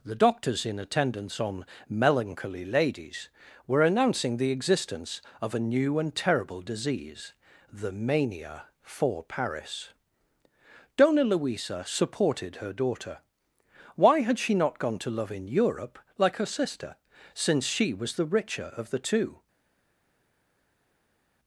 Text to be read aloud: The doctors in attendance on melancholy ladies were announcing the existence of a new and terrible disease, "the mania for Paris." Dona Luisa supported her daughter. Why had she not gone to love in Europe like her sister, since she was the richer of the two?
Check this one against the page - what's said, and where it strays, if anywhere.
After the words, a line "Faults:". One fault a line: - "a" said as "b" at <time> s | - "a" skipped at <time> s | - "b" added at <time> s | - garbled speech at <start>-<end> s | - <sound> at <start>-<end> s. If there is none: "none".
The doctors in attendance on melancholy ladies were announcing the existence of a new and terrible disease, "the mania for Paris." Dona Luisa supported her daughter. Why had she not gone to love in Europe like her sister, since she was the richer of the two?
Faults:
none